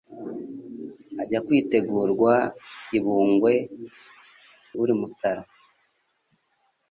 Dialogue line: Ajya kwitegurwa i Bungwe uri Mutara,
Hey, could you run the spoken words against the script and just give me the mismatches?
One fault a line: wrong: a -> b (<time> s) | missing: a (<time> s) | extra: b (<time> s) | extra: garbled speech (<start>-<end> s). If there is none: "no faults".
no faults